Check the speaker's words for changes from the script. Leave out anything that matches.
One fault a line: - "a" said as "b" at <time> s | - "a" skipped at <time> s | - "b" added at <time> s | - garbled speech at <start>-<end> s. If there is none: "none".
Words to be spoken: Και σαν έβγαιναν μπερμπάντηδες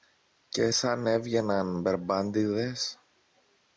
none